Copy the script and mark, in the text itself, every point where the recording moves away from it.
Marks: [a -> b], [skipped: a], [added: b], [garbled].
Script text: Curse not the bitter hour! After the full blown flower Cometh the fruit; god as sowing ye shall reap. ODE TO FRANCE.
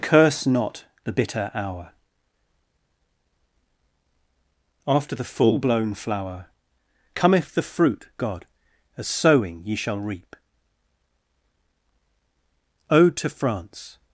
Curse not the bitter hour! After the full blown flower Cometh the fruit; god as sowing ye shall reap. ODE TO FRANCE.